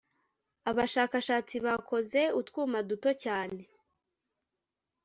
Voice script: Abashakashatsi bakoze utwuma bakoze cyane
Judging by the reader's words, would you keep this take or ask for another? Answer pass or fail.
fail